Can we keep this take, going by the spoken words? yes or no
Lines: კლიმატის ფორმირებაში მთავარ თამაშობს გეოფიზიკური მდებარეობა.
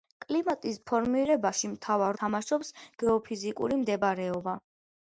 yes